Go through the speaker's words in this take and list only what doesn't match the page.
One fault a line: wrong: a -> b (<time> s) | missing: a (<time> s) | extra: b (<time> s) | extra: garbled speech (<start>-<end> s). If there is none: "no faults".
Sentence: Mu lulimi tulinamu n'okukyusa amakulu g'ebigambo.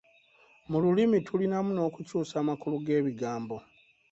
no faults